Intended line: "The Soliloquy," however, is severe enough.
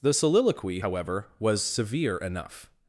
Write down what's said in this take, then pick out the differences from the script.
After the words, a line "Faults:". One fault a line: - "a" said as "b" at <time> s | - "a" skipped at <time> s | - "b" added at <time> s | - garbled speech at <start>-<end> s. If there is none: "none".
"The Soliloquy," however, was severe enough.
Faults:
- "is" said as "was" at 1.4 s